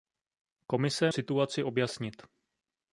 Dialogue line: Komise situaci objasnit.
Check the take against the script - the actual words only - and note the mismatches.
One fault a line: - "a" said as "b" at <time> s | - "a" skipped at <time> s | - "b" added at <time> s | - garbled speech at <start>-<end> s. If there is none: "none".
none